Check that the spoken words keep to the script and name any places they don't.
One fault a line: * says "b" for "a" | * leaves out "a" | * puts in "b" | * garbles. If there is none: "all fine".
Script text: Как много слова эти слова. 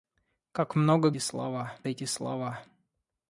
all fine